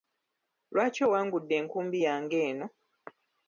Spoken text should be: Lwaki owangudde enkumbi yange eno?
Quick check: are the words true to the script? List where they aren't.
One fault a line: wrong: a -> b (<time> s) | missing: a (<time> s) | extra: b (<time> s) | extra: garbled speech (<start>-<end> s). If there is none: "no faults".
no faults